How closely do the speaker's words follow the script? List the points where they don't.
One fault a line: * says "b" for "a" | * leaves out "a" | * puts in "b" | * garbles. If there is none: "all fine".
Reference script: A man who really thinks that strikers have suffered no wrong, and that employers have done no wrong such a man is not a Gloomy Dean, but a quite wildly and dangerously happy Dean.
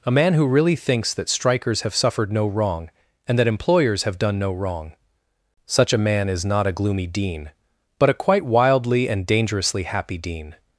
all fine